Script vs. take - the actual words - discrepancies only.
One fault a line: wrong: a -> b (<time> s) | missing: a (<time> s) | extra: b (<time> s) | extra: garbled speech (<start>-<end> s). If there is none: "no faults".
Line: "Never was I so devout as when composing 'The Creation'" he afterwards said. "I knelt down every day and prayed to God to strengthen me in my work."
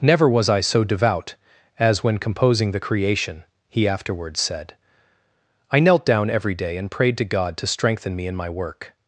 no faults